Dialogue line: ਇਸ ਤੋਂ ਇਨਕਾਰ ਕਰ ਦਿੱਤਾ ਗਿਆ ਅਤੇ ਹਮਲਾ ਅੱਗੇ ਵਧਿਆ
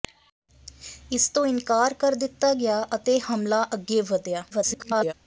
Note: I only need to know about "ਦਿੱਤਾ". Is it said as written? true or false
true